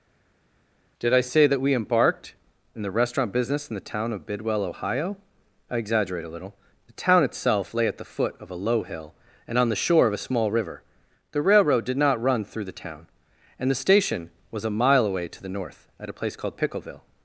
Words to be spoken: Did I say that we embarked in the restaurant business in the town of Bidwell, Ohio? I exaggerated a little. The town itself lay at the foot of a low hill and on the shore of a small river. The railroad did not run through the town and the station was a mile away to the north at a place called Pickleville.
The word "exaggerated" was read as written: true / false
false